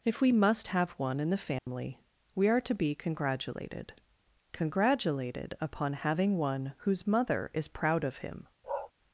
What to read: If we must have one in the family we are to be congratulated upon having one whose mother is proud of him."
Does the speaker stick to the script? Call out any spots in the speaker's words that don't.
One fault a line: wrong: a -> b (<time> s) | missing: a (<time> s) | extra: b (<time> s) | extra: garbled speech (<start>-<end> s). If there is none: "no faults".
extra: congratulated (4.5 s)